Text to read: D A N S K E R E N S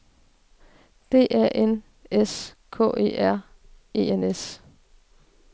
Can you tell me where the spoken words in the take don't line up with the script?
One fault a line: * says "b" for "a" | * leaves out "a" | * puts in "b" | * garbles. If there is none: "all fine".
all fine